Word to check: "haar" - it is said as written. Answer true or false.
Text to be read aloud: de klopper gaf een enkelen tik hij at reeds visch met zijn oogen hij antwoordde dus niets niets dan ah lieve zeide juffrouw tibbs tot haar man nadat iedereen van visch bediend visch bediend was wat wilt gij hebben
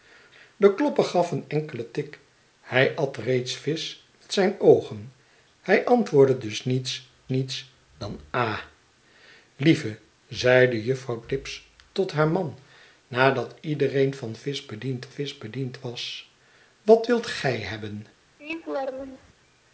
true